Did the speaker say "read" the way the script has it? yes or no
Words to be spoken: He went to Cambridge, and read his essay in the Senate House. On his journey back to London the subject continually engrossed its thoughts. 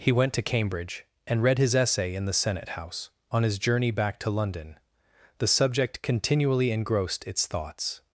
yes